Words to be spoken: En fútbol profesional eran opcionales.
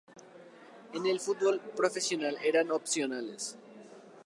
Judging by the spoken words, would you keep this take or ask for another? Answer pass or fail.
fail